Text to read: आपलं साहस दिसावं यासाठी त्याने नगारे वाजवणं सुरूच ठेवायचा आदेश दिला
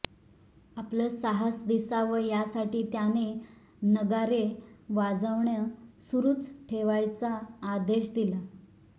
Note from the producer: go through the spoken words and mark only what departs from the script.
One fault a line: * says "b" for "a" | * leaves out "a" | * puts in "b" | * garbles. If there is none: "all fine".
all fine